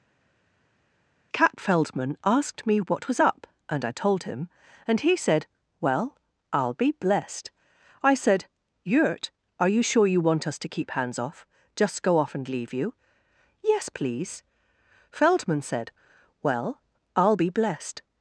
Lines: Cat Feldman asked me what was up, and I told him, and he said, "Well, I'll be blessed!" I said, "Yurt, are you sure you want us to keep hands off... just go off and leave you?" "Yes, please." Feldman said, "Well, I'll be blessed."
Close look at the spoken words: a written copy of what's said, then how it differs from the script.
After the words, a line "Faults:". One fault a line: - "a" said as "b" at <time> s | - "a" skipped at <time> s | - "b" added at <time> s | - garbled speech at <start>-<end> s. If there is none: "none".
Cat Feldman asked me what was up, and I told him, and he said, "Well, I'll be blessed!" I said, "Yurt, are you sure you want us to keep hands off... just go off and leave you?" "Yes, please." Feldman said, "Well, I'll be blessed."
Faults:
none